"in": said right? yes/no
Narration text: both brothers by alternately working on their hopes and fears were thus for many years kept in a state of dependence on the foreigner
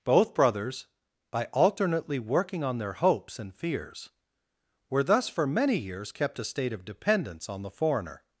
no